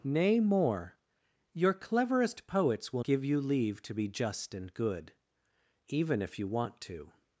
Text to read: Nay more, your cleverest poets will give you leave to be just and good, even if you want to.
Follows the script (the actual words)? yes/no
yes